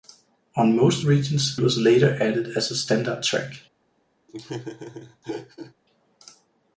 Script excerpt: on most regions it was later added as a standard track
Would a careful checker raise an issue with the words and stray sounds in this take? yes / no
yes